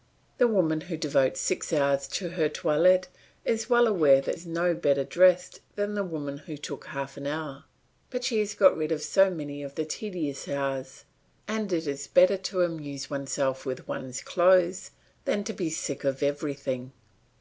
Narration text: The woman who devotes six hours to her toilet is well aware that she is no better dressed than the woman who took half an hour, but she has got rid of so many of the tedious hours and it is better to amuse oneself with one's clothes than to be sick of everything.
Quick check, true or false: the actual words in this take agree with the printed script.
false